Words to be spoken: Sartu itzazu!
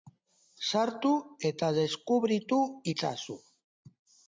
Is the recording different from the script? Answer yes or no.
yes